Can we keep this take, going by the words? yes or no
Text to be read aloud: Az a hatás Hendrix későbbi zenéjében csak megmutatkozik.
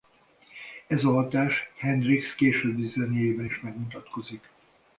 no